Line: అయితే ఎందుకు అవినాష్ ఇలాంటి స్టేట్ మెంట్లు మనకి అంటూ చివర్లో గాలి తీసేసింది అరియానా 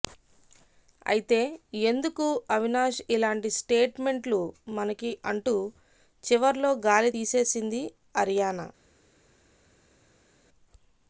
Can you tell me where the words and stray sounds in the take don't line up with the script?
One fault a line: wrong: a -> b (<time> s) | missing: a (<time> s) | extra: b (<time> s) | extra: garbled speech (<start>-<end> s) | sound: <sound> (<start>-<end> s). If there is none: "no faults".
no faults